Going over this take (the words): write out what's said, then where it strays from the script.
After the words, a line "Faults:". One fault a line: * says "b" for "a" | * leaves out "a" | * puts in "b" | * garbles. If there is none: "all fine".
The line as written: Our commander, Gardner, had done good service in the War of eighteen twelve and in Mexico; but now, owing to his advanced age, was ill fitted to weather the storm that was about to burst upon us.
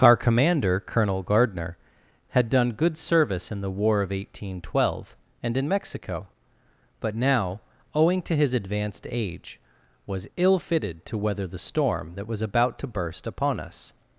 Our commander, Colonel Gardner, had done good service in the War of eighteen twelve and in Mexico; but now, owing to his advanced age, was ill fitted to weather the storm that was about to burst upon us.
Faults:
* puts in "Colonel"